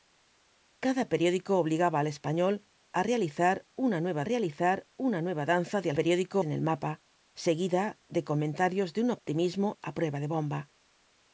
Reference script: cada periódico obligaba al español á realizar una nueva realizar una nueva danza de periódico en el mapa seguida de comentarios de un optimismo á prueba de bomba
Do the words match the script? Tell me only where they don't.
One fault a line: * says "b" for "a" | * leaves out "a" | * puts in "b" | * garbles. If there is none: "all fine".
all fine